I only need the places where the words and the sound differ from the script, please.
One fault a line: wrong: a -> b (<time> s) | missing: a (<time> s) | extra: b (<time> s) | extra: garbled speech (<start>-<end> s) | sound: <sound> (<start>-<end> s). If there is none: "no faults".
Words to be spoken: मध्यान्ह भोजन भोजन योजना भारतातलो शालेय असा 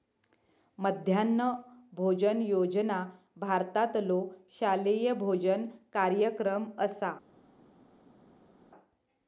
missing: भोजन (2.4 s)
extra: भोजन कार्यक्रम (5.2 s)